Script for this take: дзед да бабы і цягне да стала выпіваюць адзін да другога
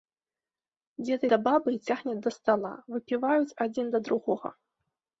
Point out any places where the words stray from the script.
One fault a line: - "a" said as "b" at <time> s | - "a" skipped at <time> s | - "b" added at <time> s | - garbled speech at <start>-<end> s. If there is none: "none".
none